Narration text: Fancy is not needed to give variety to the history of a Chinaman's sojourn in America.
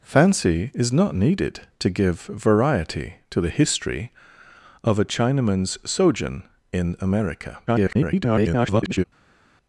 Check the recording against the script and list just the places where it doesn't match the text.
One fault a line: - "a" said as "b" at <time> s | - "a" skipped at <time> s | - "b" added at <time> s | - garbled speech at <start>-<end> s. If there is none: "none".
- garbled speech at 7.7-9.0 s